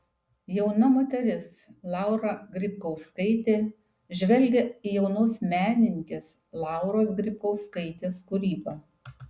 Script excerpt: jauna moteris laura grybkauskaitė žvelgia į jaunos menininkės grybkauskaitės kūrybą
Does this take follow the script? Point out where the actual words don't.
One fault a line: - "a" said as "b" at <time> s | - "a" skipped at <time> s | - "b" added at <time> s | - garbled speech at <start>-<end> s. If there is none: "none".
- "lauros" added at 6.7 s